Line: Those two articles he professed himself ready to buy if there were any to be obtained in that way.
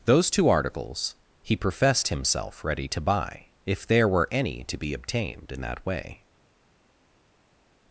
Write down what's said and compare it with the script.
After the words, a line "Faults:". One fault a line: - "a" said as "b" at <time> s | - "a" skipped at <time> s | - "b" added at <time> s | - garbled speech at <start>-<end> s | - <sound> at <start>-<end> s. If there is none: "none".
Those two articles he professed himself ready to buy if there were any to be obtained in that way.
Faults:
none